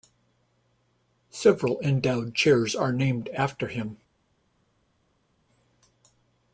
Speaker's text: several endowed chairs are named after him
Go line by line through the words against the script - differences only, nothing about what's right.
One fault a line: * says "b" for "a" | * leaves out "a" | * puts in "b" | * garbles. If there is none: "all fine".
all fine